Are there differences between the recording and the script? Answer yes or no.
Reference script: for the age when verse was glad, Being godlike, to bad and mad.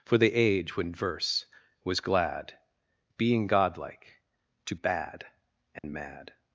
no